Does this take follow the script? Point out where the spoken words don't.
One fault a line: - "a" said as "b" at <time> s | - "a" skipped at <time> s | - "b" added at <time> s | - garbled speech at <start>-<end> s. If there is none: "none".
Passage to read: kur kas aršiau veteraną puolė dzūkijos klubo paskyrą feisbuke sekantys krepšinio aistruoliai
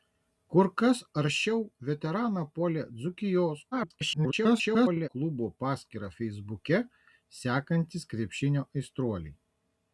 - garbled speech at 3.7-5.1 s